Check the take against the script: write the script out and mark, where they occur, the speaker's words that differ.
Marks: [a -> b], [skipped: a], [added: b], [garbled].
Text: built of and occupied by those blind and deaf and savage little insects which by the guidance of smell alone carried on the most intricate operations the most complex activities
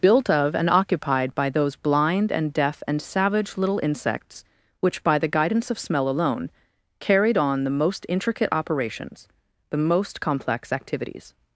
built of and occupied by those blind and deaf and savage little insects which by the guidance of smell alone carried on the most intricate operations the most complex activities